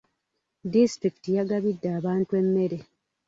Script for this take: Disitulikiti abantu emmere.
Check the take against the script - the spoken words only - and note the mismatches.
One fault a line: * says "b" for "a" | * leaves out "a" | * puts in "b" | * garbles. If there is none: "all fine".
* puts in "yagabidde"